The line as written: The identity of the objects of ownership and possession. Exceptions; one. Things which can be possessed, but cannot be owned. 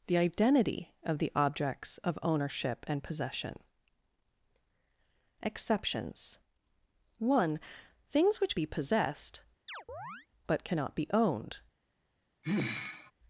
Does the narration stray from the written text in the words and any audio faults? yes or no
yes